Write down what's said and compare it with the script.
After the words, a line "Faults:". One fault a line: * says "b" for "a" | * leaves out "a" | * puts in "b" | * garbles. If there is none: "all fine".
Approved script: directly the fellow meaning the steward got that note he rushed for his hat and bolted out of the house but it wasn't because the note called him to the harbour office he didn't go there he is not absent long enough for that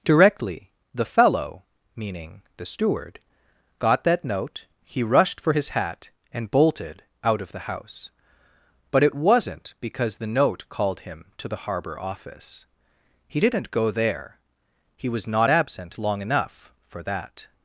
directly the fellow meaning the steward got that note he rushed for his hat and bolted out of the house but it wasn't because the note called him to the harbour office he didn't go there he was not absent long enough for that
Faults:
* says "was" for "is"